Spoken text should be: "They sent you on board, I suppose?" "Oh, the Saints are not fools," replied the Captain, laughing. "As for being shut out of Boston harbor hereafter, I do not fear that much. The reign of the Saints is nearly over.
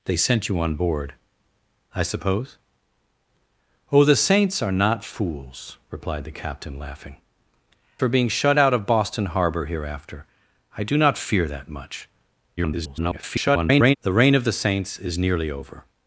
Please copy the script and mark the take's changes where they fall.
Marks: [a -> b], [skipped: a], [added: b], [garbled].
"They sent you on board, I suppose?" "Oh, the Saints are not fools," replied the Captain, laughing. [skipped: "As] for being shut out of Boston harbor hereafter, I do not fear that much. [garbled] The reign of the Saints is nearly over.